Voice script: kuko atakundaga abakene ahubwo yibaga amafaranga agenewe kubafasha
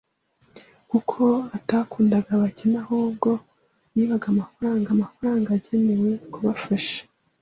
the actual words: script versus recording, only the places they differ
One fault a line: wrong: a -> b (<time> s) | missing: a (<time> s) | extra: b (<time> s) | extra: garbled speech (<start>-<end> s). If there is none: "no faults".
extra: amafaranga (5.0 s)